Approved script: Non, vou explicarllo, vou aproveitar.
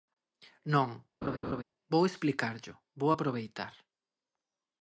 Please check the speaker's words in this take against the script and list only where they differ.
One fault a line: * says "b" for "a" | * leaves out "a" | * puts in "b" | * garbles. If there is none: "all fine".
all fine